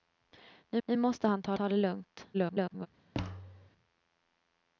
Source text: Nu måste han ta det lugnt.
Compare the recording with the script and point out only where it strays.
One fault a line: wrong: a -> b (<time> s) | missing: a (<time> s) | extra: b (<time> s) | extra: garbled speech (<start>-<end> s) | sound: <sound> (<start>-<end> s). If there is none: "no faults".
extra: nu (0.8 s)
extra: ta (1.5 s)
extra: garbled speech (2.3-2.9 s)
sound: thud (3.1-3.7 s)